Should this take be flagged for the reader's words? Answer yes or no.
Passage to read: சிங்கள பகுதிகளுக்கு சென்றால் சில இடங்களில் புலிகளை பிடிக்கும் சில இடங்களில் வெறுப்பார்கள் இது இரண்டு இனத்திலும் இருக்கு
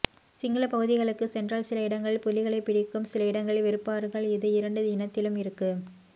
no